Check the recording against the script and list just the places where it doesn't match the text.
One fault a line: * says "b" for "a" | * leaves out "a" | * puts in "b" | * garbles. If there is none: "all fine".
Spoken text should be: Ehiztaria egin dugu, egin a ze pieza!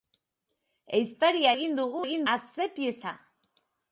all fine